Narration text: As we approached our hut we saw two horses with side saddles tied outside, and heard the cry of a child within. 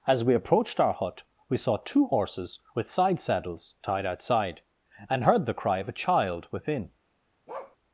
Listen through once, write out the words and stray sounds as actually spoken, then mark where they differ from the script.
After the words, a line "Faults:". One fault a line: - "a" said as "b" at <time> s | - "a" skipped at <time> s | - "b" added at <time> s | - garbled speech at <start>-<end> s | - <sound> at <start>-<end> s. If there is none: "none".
As we approached our hut we saw two horses with side saddles tied outside, and heard the cry of a child within.
Faults:
- bark at 7.5-7.8 s